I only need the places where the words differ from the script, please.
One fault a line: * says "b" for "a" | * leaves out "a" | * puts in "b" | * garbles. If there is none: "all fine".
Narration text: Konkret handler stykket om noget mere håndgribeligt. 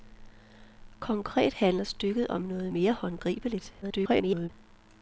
* garbles